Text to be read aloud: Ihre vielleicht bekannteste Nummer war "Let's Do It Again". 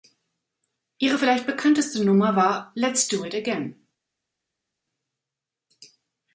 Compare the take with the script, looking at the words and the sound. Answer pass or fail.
pass